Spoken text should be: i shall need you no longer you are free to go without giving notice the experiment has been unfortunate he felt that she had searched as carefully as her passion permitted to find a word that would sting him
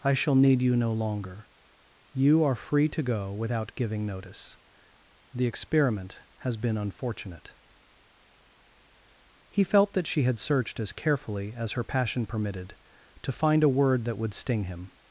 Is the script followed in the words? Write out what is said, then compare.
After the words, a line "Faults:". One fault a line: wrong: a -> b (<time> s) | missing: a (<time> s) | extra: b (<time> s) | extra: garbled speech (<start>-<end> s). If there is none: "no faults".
i shall need you no longer you are free to go without giving notice the experiment has been unfortunate he felt that she had searched as carefully as her passion permitted to find a word that would sting him
Faults:
no faults